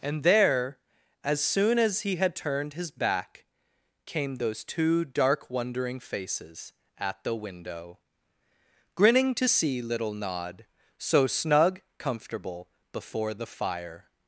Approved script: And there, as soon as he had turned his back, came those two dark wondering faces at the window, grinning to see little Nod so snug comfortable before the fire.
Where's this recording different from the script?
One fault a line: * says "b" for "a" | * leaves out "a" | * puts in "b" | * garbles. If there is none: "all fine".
all fine